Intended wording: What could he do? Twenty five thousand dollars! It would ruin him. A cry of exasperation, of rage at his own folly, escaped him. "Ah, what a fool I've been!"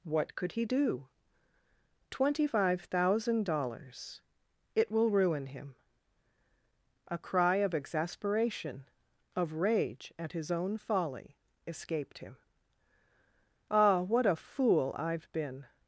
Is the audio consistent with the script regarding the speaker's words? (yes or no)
no